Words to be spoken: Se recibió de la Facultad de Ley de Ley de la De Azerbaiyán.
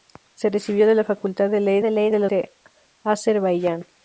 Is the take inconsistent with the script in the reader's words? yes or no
no